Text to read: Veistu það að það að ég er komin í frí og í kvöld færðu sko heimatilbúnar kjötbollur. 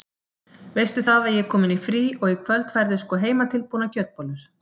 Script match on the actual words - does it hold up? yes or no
no